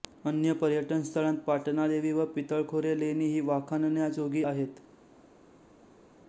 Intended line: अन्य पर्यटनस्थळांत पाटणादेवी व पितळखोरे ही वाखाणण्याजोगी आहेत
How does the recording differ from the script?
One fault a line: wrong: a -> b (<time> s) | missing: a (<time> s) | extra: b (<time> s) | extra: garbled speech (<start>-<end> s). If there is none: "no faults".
extra: लेणी (3.0 s)